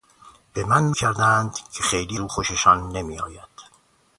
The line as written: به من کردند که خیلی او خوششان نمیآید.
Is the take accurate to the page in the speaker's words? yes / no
yes